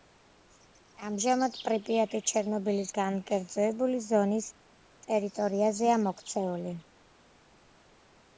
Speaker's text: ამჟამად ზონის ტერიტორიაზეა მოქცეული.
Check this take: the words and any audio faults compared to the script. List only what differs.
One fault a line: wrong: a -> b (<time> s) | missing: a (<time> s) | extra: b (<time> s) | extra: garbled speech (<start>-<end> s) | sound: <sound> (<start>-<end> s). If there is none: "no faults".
extra: პრიპიატი ჩერნობილის განკერძოებული (1.6 s)